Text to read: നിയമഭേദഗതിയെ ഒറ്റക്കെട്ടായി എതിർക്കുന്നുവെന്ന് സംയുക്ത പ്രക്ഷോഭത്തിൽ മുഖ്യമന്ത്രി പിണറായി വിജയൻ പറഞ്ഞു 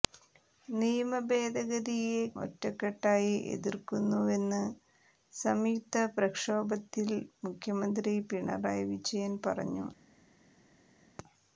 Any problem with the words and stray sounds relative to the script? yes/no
no